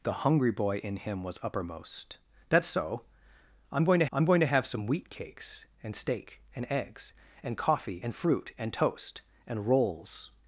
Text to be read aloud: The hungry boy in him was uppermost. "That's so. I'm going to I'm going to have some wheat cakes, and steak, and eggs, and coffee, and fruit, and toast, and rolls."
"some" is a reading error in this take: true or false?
false